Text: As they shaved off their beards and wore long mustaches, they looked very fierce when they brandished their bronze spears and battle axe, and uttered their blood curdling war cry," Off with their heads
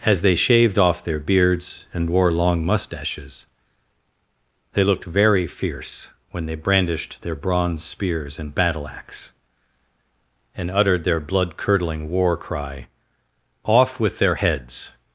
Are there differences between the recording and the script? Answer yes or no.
no